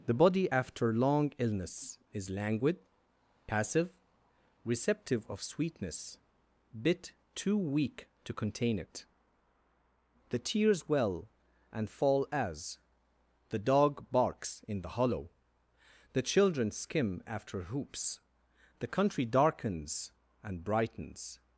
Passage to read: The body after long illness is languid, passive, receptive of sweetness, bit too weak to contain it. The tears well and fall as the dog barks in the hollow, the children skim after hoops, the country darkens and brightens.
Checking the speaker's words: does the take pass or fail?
pass